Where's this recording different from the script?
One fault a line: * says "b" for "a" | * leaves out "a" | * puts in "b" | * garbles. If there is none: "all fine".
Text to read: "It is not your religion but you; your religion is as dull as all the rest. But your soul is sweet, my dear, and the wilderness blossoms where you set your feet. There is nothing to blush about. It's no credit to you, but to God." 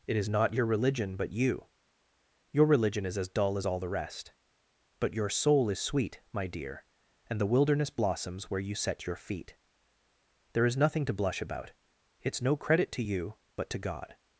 all fine